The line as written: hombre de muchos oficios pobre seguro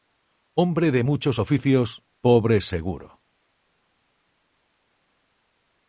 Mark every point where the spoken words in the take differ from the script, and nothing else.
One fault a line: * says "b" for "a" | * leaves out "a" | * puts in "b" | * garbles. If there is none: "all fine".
all fine